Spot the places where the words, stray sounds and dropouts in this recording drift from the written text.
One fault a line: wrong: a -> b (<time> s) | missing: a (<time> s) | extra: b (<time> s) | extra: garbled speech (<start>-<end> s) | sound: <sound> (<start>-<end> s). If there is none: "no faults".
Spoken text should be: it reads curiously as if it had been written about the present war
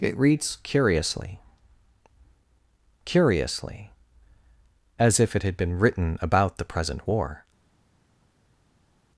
extra: curiously (3.0 s)